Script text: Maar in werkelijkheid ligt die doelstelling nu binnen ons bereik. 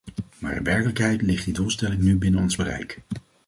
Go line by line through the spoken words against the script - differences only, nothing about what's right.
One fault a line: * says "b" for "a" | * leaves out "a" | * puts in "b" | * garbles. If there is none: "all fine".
all fine